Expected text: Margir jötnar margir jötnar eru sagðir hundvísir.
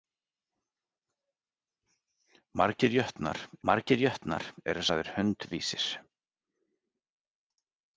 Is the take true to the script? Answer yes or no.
yes